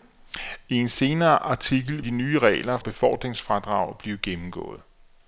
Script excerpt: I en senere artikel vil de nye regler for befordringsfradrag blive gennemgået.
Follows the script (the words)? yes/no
no